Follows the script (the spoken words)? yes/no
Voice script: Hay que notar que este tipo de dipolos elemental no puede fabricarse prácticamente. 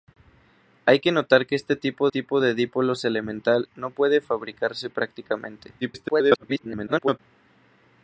no